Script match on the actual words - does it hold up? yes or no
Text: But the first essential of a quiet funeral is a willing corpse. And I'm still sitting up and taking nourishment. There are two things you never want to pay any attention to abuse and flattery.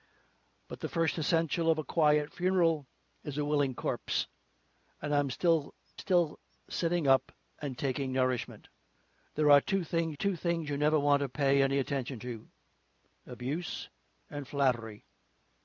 no